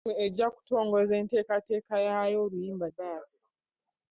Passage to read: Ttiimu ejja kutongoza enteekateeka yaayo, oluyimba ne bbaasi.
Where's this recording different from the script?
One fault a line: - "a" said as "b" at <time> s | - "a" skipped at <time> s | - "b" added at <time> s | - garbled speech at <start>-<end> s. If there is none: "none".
- "ne" skipped at 2.9 s